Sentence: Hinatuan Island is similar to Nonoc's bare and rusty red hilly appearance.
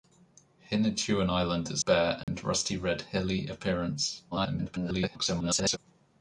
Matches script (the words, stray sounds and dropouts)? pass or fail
fail